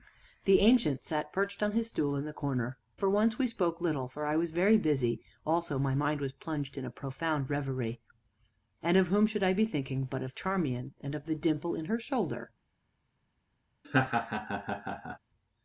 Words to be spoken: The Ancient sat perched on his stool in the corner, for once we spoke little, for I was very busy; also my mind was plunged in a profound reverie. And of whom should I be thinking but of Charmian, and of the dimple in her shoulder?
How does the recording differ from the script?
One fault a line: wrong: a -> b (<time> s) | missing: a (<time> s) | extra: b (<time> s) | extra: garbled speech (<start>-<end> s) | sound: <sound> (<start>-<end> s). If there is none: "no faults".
sound: laugh (13.8-15.2 s)